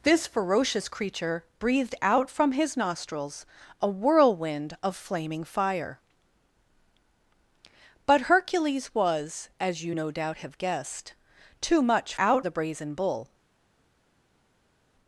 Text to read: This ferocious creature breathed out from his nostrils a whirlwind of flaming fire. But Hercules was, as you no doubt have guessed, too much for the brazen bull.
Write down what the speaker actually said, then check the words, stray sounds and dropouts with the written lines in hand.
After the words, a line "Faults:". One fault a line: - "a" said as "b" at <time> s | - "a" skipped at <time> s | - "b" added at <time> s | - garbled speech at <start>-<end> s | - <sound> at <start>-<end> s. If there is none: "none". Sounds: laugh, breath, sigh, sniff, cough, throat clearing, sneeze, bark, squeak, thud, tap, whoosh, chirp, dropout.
This ferocious creature breathed out from his nostrils a whirlwind of flaming fire. But Hercules was, as you no doubt have guessed, too much out the brazen bull.
Faults:
- "for" said as "out" at 12.2 s